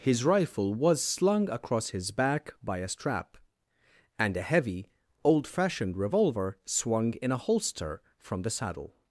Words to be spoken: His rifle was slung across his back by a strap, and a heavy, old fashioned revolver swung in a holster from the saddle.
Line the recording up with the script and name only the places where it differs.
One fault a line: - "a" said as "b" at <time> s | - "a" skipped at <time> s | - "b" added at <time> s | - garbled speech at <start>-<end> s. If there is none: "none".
none